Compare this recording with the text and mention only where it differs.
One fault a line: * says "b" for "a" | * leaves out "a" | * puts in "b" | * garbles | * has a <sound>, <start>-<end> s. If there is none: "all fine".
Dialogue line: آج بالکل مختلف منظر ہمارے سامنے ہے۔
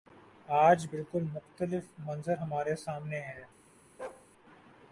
* has a bark, 4.0-4.3 s